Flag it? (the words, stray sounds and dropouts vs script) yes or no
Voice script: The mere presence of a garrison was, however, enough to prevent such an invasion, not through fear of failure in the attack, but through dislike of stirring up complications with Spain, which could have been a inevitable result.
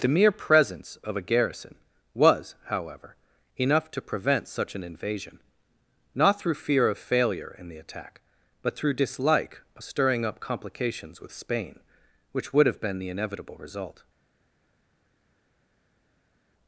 yes